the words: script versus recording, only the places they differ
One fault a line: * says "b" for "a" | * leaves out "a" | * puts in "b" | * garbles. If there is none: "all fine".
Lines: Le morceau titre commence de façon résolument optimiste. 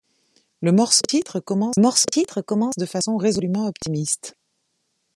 * puts in "morceau titre commence"